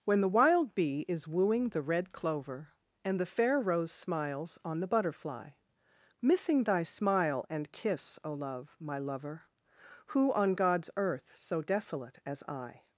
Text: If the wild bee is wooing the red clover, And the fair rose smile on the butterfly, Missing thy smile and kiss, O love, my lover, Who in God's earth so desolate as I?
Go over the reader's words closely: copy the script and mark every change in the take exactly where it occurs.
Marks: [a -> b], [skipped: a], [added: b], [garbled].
[If -> When] the wild bee is wooing the red clover, And the fair rose [smile -> smiles] on the butterfly, Missing thy smile and kiss, O love, my lover, Who [in -> on] God's earth so desolate as I?